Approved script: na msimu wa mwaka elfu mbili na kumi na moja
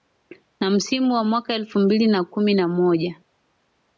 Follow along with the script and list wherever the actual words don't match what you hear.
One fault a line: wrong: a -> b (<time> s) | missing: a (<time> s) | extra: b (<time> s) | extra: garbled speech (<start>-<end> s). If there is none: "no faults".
no faults